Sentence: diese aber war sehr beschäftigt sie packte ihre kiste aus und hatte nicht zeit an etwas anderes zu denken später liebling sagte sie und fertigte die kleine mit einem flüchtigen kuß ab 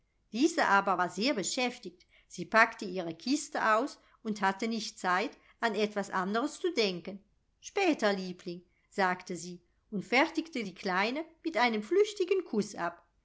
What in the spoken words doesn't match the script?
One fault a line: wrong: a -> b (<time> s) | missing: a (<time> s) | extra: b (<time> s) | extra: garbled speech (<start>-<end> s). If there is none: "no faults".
no faults